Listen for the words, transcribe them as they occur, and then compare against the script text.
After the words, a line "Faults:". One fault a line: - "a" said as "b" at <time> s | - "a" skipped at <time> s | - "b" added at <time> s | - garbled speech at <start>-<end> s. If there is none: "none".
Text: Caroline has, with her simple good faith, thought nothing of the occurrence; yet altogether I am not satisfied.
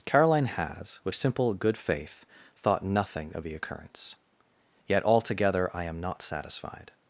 Caroline has, with simple good faith, thought nothing of the occurrence; yet altogether I am not satisfied.
Faults:
- "her" skipped at 1.1 s